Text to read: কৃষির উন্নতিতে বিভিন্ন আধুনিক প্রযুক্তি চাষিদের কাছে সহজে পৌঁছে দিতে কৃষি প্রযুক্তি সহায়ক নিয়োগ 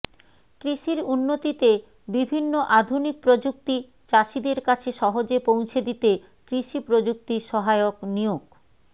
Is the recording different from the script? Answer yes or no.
no